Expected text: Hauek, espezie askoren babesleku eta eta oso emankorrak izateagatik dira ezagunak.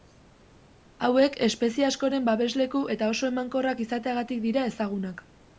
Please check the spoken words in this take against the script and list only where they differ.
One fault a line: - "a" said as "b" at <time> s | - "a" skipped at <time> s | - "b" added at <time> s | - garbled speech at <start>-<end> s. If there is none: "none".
- "eta" skipped at 3.1 s